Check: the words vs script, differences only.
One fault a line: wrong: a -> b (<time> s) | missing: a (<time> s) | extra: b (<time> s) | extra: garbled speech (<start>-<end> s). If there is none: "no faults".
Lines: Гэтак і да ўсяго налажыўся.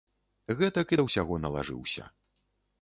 no faults